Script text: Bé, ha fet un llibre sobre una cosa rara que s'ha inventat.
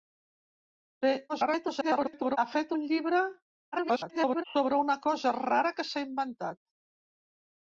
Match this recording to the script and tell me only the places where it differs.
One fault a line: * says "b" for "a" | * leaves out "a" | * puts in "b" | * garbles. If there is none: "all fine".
* garbles
* garbles